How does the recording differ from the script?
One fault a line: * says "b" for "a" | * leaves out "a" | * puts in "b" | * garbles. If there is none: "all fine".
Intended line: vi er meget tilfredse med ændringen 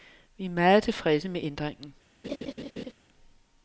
all fine